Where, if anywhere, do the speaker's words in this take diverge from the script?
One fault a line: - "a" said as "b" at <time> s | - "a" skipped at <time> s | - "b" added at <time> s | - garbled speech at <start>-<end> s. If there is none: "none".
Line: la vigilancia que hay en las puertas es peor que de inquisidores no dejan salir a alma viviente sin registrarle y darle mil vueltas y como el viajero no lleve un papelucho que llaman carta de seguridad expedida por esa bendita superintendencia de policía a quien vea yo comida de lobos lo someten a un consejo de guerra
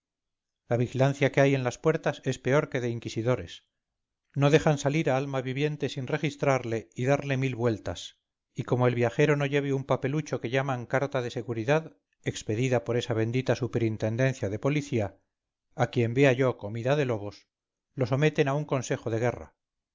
none